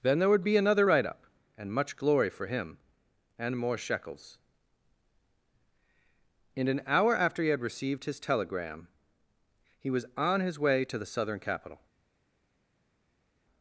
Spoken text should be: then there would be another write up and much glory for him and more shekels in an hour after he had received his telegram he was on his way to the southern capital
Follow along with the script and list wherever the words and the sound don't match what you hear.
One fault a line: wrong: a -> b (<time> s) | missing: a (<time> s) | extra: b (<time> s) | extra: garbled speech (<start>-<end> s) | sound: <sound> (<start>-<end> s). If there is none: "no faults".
no faults